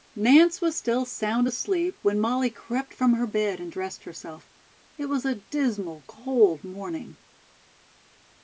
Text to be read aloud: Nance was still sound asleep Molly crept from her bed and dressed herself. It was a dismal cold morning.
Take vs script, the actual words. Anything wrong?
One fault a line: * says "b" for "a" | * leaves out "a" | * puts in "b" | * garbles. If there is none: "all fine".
* puts in "when"